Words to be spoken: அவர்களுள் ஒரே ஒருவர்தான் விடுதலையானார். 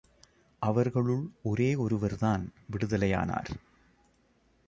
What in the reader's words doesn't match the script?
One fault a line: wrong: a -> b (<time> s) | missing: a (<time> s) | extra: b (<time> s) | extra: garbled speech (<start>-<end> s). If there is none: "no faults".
no faults